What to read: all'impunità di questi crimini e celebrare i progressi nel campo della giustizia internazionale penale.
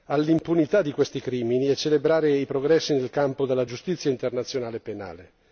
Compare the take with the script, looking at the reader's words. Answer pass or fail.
pass